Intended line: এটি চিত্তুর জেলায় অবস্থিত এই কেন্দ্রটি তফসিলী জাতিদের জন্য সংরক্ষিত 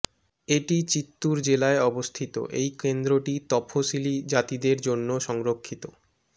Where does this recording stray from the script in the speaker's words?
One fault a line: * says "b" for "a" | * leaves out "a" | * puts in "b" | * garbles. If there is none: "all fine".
all fine